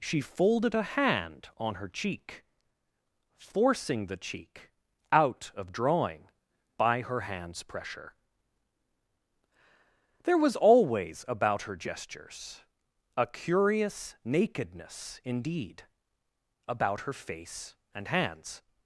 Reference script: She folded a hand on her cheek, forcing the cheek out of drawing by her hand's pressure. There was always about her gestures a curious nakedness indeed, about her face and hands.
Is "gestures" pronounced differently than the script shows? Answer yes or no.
no